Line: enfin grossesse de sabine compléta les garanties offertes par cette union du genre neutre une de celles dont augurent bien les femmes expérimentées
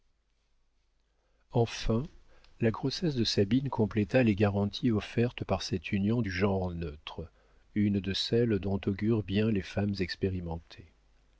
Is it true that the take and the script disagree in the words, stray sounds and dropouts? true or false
true